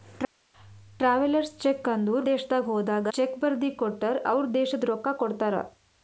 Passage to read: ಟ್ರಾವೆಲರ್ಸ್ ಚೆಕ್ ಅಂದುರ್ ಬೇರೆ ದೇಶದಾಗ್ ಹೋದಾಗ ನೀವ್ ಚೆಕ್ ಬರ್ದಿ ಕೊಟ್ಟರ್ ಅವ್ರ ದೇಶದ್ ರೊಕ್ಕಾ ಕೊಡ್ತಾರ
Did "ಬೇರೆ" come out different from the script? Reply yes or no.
yes